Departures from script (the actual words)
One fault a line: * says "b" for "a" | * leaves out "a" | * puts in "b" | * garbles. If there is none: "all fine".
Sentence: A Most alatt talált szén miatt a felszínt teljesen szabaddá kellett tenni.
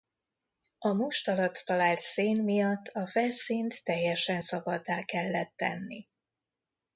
all fine